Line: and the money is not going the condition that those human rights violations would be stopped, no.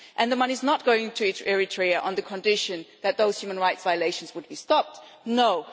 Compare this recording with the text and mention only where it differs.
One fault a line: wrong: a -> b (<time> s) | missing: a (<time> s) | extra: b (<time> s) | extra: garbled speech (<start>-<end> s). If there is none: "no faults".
extra: to Eritrea on (1.1 s)